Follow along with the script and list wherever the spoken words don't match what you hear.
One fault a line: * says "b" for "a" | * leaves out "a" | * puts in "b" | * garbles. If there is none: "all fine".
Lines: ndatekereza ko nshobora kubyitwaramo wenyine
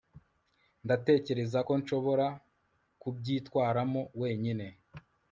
all fine